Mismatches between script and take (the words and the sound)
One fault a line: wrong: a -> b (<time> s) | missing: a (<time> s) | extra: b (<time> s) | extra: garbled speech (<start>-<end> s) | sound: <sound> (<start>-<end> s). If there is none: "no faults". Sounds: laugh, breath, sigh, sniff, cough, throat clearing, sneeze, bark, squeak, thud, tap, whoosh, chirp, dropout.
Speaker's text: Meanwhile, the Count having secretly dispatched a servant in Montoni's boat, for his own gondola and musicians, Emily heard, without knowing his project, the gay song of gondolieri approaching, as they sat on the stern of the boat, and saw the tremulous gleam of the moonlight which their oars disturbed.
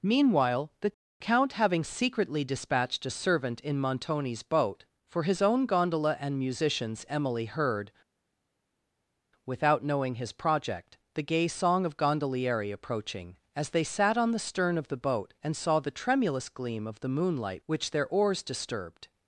no faults